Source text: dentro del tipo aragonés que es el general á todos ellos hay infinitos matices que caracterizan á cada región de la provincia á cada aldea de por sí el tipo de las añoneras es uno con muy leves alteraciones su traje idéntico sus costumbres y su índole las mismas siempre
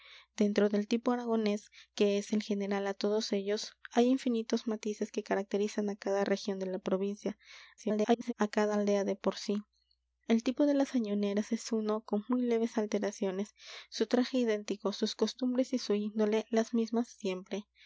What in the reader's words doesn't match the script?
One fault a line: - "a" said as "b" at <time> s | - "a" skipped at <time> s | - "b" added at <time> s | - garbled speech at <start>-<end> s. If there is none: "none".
- garbled speech at 7.8-8.3 s